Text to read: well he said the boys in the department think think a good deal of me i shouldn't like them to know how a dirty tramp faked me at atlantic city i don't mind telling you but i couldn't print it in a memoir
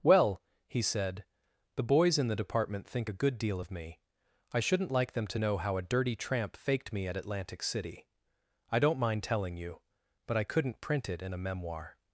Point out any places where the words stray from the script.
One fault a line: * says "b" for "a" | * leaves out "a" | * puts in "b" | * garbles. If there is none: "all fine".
* leaves out "think"